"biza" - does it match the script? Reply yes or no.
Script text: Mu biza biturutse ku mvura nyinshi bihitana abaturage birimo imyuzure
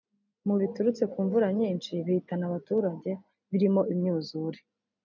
no